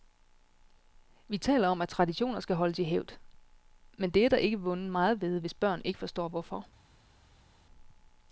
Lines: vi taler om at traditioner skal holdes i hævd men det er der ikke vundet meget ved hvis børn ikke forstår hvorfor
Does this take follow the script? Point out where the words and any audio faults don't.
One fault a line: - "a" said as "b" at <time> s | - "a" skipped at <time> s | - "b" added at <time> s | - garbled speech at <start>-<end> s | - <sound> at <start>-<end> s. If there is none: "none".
none